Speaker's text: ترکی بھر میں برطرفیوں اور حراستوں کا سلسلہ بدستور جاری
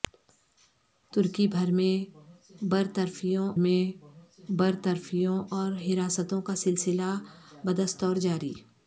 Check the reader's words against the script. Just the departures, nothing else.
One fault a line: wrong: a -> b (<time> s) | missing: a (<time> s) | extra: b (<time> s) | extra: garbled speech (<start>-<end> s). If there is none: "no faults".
extra: میں برطرفیوں (3.6 s)